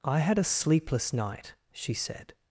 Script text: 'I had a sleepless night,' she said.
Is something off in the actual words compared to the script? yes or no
no